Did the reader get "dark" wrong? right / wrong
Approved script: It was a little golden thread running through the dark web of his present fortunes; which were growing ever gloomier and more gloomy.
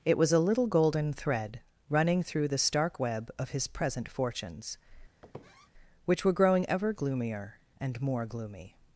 wrong